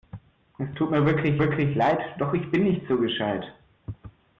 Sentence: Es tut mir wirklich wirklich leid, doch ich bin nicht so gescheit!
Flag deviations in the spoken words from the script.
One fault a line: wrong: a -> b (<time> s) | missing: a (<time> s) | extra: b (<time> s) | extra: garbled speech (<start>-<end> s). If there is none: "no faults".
no faults